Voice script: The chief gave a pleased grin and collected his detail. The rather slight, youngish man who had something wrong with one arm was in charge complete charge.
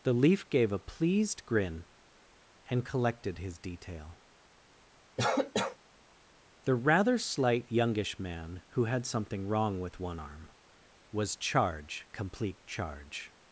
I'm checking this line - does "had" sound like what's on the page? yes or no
yes